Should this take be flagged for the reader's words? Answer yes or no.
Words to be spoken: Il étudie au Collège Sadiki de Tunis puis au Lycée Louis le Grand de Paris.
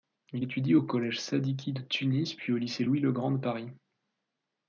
no